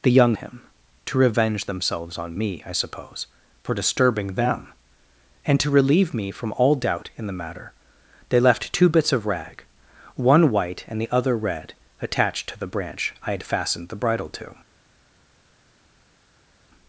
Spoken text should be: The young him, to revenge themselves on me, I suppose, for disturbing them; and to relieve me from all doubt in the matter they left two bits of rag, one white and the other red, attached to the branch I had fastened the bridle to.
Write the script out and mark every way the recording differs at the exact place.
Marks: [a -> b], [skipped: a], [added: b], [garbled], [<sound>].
The young him, to revenge themselves on me, I suppose, for disturbing them; and to relieve me from all doubt in the matter they left two bits of rag, one white and the other red, attached to the branch I had fastened the bridle to.